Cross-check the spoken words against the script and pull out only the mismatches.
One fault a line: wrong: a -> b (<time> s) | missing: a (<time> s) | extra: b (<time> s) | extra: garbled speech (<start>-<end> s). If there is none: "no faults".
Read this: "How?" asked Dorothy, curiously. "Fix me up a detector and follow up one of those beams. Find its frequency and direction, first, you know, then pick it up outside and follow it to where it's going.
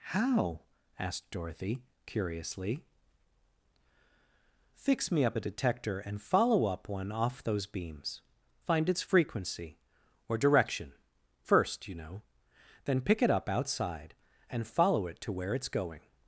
wrong: of -> off (7.1 s)
wrong: and -> or (10.3 s)